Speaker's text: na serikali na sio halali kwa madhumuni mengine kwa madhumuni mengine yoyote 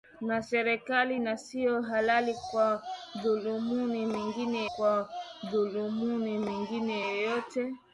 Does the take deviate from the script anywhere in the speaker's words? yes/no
no